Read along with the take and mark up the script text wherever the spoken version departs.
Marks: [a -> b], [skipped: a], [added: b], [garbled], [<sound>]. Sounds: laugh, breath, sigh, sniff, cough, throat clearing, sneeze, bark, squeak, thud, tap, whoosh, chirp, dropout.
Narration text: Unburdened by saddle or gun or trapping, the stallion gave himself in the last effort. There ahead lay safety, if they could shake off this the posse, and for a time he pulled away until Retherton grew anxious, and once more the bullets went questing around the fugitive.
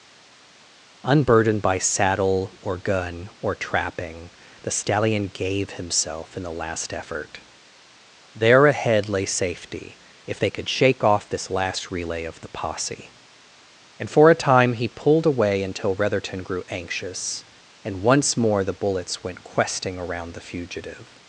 Unburdened by saddle or gun or trapping, the stallion gave himself in the last effort. There ahead lay safety, if they could shake off this [added: last relay of] the posse, and for a time he pulled away until Retherton grew anxious, and once more the bullets went questing around the fugitive.